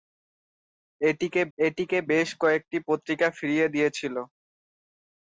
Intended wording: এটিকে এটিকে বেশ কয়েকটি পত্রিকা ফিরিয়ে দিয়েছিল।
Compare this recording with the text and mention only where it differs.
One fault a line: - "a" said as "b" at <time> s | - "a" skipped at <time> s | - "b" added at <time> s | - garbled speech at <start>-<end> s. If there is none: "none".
none